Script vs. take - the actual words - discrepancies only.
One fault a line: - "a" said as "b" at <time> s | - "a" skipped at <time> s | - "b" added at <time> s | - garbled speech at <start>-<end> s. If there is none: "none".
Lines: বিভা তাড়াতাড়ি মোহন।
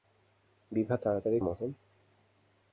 none